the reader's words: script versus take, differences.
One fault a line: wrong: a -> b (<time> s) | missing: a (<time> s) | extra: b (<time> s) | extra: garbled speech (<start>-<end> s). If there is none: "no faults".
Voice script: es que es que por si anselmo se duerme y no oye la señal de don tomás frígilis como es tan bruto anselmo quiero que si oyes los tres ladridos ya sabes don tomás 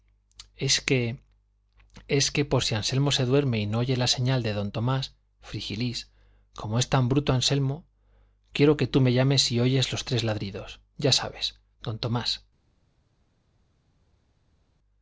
extra: tú me llames (8.9 s)